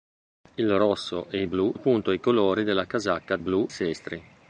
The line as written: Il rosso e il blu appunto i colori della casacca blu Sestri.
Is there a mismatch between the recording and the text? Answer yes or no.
no